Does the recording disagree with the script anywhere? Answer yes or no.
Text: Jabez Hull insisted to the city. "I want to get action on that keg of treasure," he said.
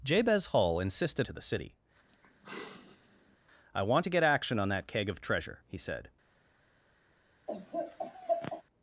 no